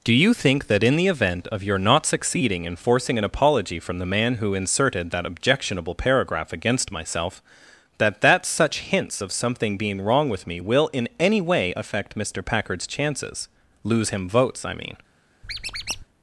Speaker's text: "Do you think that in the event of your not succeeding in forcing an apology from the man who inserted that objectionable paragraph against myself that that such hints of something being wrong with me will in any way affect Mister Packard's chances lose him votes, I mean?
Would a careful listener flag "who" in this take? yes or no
no